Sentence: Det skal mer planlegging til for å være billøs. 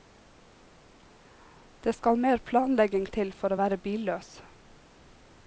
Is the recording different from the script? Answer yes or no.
no